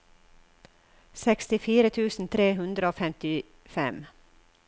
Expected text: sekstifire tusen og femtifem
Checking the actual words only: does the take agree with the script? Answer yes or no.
no